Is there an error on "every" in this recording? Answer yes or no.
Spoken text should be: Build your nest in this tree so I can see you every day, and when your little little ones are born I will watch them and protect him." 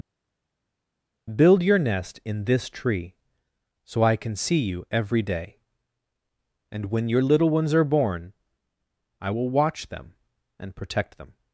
no